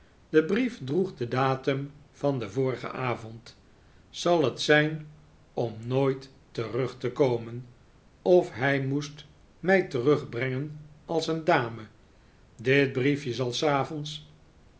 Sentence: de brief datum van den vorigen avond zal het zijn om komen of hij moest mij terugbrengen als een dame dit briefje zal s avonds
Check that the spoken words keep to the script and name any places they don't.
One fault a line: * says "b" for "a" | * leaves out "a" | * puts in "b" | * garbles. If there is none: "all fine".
* puts in "droeg den"
* puts in "nooit terug te"